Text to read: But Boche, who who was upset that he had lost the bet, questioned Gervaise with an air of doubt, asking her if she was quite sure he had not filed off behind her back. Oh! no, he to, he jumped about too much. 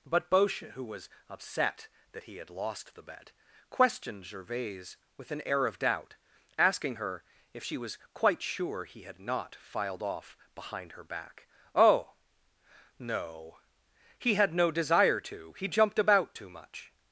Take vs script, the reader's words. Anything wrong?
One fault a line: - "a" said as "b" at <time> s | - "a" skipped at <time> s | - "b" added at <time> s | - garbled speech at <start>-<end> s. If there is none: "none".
- "who" skipped at 0.8 s
- "had no desire" added at 14.4 s